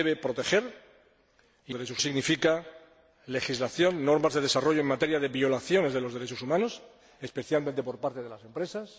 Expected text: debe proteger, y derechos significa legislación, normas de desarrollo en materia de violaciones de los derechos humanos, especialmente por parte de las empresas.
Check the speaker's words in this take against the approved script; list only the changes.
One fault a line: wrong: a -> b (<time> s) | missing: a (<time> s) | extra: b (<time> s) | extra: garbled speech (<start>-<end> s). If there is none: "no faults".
no faults